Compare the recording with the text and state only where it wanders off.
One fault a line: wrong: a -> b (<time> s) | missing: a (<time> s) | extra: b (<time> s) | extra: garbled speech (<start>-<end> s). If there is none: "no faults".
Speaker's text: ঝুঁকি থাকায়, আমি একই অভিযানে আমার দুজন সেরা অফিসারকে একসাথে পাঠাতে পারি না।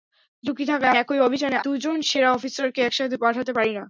missing: আমি (0.9 s)
missing: আমার (1.6 s)